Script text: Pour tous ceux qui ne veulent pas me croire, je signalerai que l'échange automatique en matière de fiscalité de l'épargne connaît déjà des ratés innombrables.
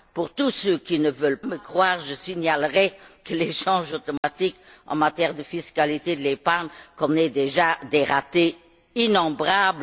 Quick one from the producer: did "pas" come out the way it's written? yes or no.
no